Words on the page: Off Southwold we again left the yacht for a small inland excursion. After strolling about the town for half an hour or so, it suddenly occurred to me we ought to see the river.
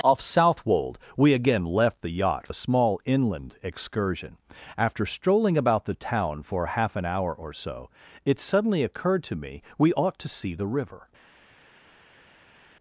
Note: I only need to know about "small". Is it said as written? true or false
true